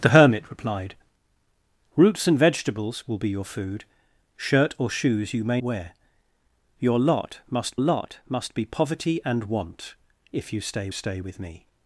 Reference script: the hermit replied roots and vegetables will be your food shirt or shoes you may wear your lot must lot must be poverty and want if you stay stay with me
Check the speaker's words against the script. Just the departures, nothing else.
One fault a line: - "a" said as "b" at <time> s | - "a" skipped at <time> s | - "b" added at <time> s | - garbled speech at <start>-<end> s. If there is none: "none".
none